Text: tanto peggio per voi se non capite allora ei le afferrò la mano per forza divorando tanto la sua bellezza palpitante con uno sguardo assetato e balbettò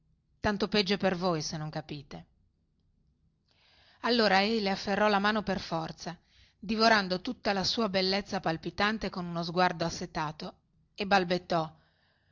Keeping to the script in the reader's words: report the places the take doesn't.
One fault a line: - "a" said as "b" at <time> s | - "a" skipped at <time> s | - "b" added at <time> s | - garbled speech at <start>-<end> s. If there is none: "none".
- "tanto" said as "tutta" at 7.2 s